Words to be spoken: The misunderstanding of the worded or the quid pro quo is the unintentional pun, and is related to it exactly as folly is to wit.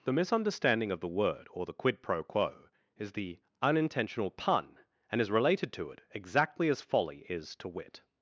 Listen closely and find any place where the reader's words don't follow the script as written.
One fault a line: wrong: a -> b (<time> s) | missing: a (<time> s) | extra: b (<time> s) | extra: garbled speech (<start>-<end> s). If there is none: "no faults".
wrong: worded -> word (1.1 s)